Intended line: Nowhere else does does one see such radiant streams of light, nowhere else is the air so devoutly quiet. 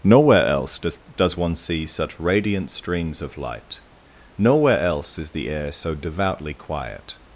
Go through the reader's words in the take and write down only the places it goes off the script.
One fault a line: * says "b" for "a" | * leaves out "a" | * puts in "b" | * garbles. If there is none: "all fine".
all fine